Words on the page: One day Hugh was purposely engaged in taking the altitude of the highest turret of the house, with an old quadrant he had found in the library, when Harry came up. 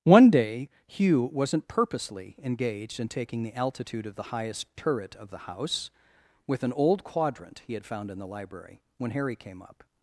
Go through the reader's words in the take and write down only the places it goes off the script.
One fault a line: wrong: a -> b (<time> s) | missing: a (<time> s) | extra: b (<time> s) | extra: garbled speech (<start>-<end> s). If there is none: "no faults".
wrong: was -> wasn't (1.3 s)